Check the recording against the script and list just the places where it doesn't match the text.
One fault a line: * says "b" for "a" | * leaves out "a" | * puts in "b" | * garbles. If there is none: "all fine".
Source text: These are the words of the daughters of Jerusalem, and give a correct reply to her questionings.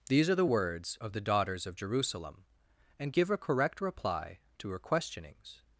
all fine